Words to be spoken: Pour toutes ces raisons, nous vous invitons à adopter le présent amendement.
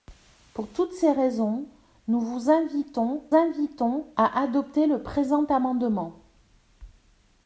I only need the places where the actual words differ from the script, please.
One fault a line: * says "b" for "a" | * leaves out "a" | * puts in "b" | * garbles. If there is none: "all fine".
* puts in "invitons"